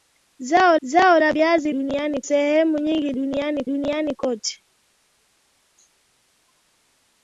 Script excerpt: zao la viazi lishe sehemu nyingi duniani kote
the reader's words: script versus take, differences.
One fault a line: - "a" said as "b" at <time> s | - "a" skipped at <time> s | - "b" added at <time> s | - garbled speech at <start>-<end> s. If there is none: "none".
- "zao" added at 0.8 s
- "lishe" said as "duniani" at 1.7 s
- "duniani" added at 3.7 s